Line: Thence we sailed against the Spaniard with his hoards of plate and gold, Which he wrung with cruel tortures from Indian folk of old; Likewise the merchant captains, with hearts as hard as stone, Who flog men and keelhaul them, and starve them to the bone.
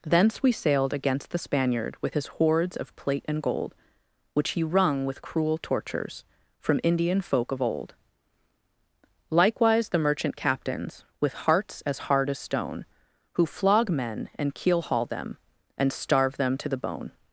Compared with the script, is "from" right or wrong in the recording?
right